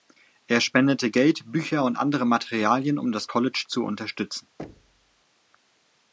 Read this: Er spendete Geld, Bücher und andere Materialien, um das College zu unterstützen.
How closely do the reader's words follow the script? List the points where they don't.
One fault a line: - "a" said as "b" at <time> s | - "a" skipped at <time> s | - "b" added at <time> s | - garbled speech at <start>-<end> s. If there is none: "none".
none